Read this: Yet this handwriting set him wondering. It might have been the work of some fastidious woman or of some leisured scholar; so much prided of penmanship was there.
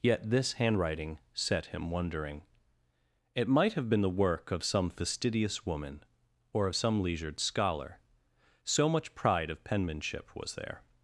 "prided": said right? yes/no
no